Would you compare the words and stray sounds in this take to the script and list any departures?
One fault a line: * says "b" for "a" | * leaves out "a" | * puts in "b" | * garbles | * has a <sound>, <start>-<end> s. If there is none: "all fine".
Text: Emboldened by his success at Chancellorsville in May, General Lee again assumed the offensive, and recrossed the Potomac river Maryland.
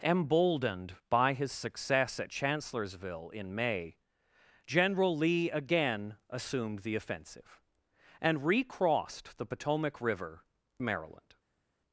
all fine